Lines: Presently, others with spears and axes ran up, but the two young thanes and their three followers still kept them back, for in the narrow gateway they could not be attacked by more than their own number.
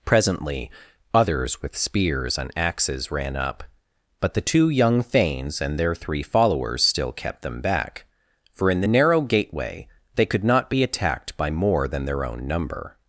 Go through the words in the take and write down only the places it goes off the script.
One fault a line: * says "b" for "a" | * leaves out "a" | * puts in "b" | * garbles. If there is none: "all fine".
all fine